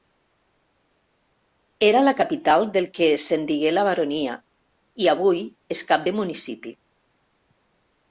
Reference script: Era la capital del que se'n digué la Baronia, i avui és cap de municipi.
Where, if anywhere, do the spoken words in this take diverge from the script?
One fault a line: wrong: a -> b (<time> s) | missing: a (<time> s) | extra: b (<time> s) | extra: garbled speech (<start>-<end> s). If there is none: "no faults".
no faults